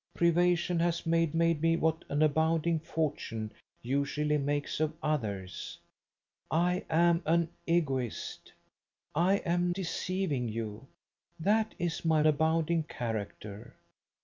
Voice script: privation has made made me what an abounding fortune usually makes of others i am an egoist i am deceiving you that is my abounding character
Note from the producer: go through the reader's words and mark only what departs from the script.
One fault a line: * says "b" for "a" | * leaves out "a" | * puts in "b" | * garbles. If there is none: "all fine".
all fine